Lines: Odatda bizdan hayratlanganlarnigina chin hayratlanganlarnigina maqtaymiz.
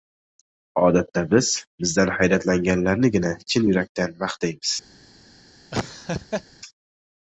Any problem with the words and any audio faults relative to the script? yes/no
yes